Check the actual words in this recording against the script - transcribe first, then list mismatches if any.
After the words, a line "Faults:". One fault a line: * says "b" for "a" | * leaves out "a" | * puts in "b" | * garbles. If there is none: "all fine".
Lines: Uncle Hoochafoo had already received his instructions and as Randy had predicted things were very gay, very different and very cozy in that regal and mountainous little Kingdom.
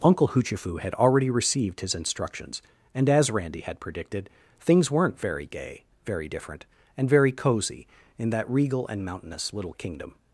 Uncle Hoochafoo had already received his instructions and as Randy had predicted things weren't very gay, very different and very cozy in that regal and mountainous little Kingdom.
Faults:
* says "weren't" for "were"